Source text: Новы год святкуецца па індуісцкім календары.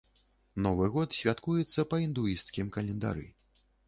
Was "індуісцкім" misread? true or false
false